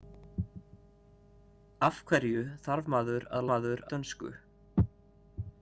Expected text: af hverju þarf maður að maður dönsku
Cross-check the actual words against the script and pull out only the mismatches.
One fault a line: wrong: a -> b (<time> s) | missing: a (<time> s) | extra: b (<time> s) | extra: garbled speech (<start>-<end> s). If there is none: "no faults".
no faults